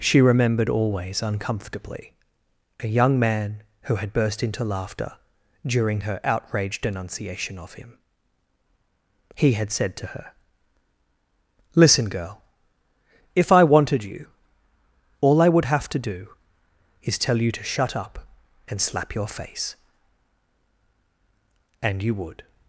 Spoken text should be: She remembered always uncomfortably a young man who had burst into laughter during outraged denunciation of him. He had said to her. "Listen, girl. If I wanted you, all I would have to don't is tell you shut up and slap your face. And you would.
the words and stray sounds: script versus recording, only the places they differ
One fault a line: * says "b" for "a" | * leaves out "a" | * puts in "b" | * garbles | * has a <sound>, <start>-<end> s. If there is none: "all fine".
* puts in "her"
* says "do" for "don't"
* puts in "to"